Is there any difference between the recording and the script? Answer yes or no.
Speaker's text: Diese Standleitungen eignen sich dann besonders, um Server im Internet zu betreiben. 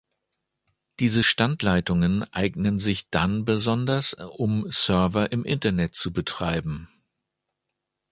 no